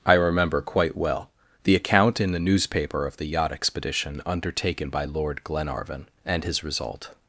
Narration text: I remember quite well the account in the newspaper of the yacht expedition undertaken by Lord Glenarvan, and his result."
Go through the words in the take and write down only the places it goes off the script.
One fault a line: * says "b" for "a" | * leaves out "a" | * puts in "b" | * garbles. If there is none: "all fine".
all fine